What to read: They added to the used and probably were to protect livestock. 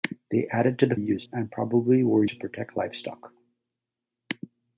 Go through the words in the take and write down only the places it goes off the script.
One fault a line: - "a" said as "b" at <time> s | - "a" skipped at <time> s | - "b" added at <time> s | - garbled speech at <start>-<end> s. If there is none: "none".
none